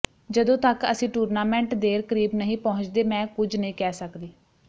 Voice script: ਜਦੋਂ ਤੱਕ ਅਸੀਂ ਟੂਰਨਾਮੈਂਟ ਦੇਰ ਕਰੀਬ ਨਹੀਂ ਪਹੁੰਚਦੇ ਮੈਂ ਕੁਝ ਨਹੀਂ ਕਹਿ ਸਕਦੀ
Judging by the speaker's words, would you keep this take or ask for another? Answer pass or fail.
pass